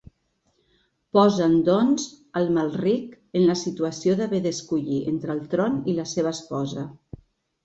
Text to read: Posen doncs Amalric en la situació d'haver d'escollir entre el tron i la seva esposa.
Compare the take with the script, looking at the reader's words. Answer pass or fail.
pass